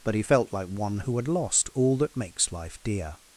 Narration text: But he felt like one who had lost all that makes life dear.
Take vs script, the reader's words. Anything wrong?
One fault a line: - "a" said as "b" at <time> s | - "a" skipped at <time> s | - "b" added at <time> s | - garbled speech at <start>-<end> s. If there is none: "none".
none